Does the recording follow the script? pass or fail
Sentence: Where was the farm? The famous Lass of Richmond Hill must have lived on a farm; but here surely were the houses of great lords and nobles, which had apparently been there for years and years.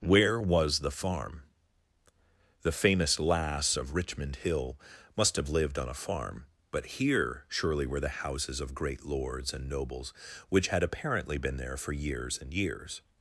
pass